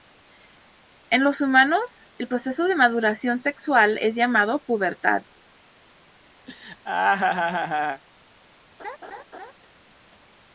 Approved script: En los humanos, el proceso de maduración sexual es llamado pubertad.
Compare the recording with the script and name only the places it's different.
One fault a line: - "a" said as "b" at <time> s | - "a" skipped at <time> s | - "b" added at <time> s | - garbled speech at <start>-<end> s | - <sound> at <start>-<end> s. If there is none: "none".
- laugh at 6.5-8.0 s
- laugh at 8.8-9.5 s